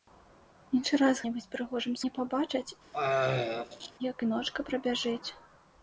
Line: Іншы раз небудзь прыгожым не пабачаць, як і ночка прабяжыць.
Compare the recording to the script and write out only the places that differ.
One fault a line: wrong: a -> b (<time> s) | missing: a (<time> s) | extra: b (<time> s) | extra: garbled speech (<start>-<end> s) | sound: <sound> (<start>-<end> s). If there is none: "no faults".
sound: throat clearing (2.9-3.9 s)